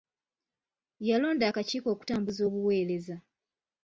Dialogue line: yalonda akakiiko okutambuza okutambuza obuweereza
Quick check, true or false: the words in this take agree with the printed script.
false